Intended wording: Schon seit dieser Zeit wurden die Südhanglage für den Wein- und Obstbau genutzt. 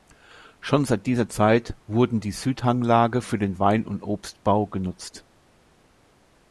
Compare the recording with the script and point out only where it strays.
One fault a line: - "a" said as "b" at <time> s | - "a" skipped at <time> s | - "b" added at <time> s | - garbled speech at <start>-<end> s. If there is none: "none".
none